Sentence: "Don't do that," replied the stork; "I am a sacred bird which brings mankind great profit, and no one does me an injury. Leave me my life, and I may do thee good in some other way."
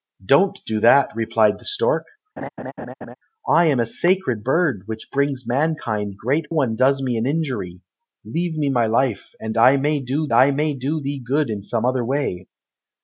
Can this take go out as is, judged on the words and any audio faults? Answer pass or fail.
fail